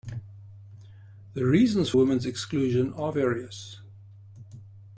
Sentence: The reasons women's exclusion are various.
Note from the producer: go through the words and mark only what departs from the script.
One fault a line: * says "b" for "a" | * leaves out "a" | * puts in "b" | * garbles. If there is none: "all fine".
all fine